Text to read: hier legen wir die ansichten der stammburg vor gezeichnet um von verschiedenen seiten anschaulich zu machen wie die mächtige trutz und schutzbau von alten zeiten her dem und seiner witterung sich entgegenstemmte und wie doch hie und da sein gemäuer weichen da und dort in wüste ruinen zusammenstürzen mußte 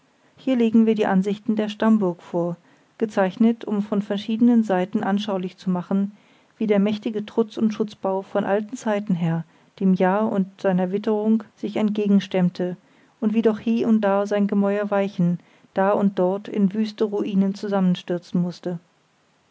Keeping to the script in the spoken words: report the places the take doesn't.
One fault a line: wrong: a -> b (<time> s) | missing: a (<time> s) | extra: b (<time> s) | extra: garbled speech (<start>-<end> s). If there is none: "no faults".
wrong: die -> der (6.7 s)
extra: jahr (9.9 s)